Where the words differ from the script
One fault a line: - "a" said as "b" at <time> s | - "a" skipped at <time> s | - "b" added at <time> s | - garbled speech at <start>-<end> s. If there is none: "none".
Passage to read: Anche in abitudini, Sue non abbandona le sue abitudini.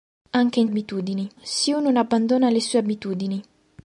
none